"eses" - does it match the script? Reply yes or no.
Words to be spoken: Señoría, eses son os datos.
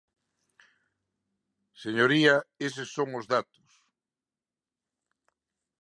yes